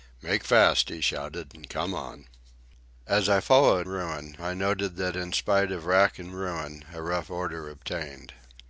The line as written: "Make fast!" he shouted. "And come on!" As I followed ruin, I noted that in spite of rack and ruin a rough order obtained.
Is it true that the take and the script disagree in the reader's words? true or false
false